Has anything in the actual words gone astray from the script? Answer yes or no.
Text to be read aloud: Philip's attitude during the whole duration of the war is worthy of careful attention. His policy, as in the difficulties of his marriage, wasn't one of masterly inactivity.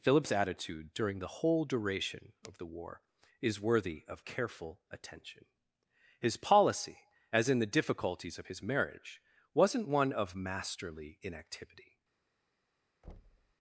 no